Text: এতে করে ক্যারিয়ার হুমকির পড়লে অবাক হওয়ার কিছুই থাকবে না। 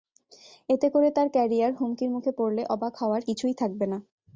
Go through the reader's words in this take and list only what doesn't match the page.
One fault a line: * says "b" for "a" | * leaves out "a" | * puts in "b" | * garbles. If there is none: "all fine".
* puts in "তাঁর"
* puts in "মুখে"